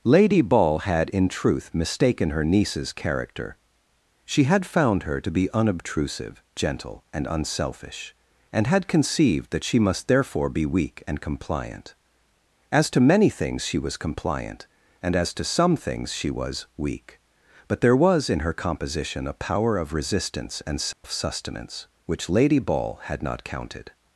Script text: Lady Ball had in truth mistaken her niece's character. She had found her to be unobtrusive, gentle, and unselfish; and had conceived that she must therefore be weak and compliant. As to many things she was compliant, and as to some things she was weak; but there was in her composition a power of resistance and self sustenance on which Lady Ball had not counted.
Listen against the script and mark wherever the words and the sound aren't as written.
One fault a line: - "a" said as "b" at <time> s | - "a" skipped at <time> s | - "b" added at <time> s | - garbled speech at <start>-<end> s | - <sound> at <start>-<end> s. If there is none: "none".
- dropout at 20.9-21.0 s
- "on" skipped at 21.9 s